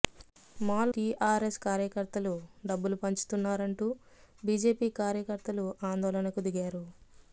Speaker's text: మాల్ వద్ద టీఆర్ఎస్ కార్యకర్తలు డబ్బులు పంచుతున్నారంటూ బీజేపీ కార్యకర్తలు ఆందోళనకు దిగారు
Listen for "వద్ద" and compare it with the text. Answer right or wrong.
wrong